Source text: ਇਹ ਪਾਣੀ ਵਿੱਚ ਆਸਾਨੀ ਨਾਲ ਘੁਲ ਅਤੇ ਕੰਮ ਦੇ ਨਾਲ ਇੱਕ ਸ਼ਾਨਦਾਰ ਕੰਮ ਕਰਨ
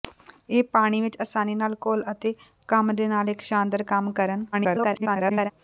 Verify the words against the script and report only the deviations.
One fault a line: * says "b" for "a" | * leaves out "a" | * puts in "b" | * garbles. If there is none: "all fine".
* garbles